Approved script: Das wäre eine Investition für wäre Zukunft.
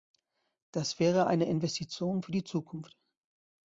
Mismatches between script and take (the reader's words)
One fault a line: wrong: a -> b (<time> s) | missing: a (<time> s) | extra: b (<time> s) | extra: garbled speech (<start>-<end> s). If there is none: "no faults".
wrong: wäre -> die (2.3 s)